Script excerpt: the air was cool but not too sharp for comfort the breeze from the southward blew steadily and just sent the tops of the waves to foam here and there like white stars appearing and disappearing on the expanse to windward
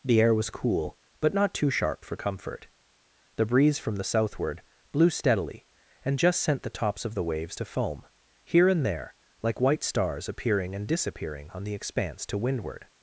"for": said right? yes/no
yes